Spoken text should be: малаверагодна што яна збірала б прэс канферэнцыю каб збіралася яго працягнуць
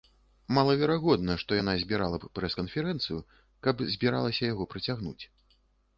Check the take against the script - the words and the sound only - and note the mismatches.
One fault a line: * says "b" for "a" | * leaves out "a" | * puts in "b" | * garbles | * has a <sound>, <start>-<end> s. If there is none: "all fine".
all fine